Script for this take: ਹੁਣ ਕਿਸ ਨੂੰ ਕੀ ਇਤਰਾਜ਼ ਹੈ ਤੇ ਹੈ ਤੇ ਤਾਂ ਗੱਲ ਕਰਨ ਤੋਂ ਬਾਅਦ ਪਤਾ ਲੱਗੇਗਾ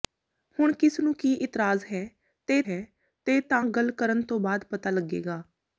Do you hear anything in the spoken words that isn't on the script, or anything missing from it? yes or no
no